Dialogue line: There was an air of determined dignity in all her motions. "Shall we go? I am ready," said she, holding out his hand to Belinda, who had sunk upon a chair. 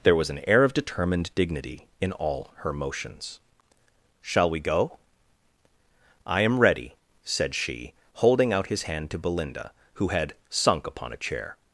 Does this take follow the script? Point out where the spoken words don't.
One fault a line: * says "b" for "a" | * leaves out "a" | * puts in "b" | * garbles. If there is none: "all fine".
all fine